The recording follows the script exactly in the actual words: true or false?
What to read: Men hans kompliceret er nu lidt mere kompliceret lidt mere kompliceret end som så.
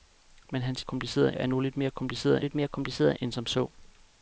true